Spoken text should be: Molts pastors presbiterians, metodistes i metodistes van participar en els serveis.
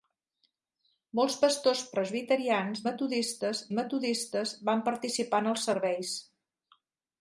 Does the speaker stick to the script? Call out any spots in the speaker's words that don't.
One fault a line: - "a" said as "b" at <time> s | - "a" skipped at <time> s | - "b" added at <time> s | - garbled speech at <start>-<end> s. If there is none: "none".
none